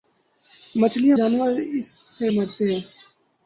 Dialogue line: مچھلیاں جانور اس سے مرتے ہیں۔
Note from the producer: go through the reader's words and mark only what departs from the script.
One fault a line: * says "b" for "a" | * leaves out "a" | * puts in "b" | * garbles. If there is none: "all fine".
all fine